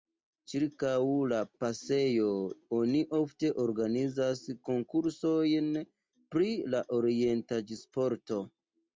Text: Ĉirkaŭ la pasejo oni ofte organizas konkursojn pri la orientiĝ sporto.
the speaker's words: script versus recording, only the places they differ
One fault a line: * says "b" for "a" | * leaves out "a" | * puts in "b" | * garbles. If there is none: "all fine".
all fine